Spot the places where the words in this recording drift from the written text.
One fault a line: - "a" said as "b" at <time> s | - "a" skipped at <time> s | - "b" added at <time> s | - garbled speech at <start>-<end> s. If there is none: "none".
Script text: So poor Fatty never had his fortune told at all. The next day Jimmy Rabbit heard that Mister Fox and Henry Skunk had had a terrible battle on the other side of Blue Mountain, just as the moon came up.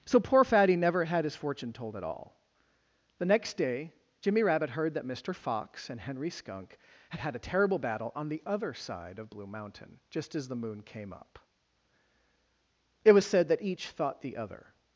- "It was said that each thought the other" added at 13.0 s